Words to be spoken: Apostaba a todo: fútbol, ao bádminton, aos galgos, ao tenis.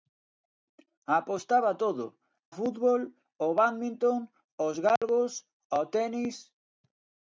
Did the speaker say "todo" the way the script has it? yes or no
yes